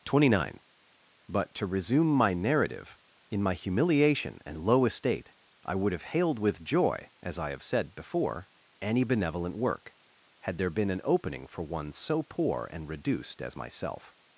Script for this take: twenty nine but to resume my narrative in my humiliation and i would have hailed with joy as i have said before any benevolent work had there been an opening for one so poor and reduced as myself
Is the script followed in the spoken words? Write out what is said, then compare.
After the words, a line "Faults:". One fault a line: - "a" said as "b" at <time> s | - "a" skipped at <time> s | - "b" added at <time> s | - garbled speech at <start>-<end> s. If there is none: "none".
twenty nine but to resume my narrative in my humiliation and low estate i would have hailed with joy as i have said before any benevolent work had there been an opening for one so poor and reduced as myself
Faults:
- "low estate" added at 4.6 s